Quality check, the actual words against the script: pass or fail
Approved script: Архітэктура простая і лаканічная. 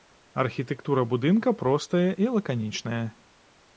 fail